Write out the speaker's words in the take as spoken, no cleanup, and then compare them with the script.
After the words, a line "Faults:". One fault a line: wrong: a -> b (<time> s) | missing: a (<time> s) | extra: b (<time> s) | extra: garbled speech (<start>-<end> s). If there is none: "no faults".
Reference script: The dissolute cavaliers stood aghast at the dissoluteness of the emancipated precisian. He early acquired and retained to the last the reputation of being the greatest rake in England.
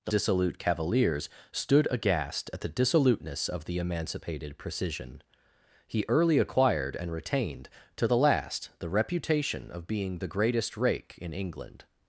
The dissolute cavaliers stood aghast at the dissoluteness of the emancipated precisian. He early acquired and retained to the last the reputation of being the greatest rake in England.
Faults:
no faults